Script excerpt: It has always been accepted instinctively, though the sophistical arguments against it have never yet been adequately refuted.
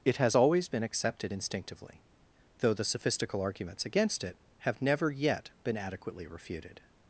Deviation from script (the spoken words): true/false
false